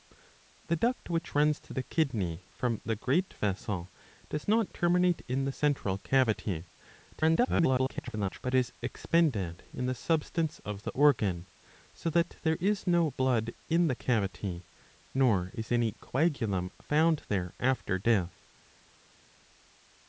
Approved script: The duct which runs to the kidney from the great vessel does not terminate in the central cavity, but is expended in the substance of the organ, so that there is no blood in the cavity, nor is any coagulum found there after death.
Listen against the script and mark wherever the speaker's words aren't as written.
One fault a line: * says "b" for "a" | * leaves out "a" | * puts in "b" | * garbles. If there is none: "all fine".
* garbles